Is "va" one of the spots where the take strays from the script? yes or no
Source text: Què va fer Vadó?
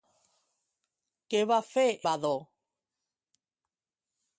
no